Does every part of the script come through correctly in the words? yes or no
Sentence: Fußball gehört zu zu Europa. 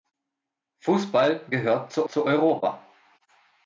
yes